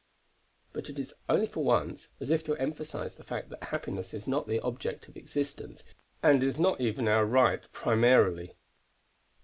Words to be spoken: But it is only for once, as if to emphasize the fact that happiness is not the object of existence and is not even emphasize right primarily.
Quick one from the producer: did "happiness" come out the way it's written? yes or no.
yes